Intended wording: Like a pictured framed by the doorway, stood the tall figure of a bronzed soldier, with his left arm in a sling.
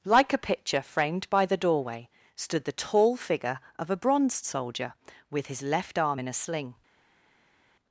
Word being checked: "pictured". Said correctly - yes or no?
no